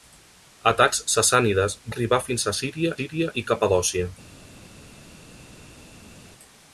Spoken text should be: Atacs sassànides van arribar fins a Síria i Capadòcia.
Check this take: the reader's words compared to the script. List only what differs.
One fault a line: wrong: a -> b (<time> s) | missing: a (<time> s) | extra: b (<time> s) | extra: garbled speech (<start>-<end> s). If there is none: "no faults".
missing: van (1.8 s)
extra: Síria (3.0 s)